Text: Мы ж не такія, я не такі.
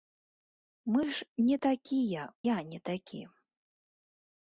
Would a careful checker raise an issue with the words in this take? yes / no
no